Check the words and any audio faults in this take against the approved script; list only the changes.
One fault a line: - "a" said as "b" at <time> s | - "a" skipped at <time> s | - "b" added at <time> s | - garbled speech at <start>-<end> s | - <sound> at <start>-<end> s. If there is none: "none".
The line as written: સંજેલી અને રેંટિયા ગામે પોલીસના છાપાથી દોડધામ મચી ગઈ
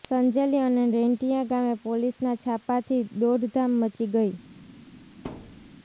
- thud at 5.2-5.7 s